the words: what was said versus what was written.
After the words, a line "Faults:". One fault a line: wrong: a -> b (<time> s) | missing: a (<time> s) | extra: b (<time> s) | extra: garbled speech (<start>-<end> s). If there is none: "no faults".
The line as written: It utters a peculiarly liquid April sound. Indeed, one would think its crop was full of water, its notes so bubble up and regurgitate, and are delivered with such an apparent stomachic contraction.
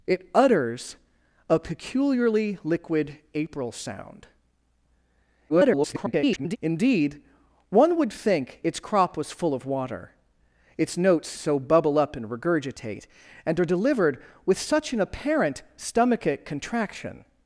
It utters a peculiarly liquid April sound. [garbled] Indeed, one would think its crop was full of water, its notes so bubble up and regurgitate, and are delivered with such an apparent stomachic contraction.
Faults:
extra: garbled speech (5.5-6.6 s)